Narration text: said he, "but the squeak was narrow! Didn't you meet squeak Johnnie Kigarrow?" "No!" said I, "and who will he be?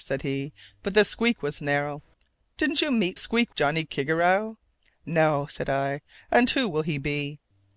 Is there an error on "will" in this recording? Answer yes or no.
no